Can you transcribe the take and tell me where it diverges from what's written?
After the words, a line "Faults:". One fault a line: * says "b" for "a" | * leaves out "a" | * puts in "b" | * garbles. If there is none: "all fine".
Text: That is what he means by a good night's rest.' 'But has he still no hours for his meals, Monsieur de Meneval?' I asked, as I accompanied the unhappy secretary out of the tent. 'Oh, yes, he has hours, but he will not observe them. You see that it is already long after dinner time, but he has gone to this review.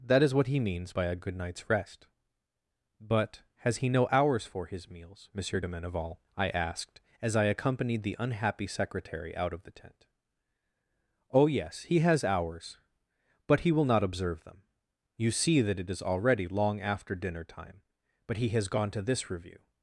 That is what he means by a good night's rest.' 'But has he no hours for his meals, Monsieur de Meneval?' I asked, as I accompanied the unhappy secretary out of the tent. 'Oh, yes, he has hours, but he will not observe them. You see that it is already long after dinner time, but he has gone to this review.
Faults:
* leaves out "still"